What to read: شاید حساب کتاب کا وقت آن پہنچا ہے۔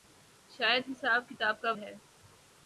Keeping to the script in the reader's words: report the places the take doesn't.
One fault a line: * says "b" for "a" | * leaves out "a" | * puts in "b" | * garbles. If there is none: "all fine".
* leaves out "وقت آن پہنچا"